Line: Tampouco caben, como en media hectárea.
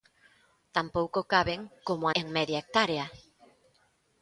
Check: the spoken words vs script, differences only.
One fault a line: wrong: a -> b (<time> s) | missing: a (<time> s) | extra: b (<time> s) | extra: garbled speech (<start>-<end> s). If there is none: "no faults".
no faults